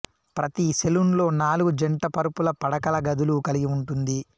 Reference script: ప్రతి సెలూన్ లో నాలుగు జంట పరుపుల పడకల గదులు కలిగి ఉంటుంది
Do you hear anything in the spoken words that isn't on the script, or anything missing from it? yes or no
no